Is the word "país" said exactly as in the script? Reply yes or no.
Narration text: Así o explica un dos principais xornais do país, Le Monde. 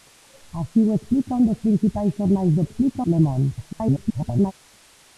no